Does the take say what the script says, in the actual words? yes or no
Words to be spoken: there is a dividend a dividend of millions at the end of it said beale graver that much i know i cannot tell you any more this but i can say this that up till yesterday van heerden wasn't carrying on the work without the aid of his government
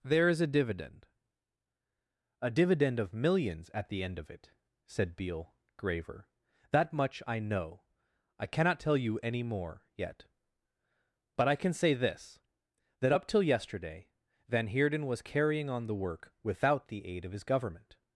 no